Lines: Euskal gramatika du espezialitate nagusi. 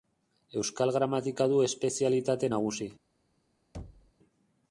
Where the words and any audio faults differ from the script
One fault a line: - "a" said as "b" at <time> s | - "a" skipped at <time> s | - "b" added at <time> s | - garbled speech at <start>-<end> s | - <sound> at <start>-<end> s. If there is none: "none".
- thud at 3.7-4.1 s